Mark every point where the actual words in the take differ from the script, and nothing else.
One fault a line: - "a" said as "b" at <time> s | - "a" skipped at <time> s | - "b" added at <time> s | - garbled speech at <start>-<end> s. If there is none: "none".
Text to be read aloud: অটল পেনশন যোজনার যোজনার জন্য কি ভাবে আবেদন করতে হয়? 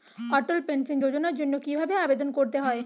- "যোজনার" skipped at 1.3 s